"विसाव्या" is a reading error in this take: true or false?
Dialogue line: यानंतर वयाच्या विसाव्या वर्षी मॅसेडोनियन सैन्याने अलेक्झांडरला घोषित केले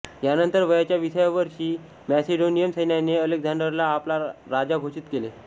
false